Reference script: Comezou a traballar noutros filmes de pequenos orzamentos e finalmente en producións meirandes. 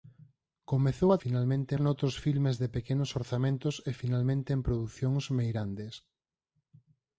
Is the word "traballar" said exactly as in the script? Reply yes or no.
no